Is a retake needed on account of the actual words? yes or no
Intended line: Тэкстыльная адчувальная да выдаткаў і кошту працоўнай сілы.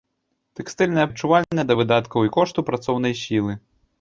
no